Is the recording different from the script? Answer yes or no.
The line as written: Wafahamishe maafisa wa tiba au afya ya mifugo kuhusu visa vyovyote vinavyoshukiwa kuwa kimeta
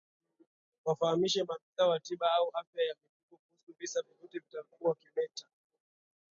yes